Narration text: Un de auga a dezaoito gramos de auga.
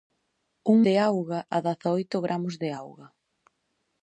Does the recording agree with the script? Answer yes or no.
yes